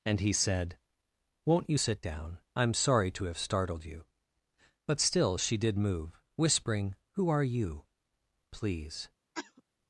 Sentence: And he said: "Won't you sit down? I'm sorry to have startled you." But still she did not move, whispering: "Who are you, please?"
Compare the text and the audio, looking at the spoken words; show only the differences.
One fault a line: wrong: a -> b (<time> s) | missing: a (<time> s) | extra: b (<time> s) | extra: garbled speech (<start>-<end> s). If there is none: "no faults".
missing: not (5.8 s)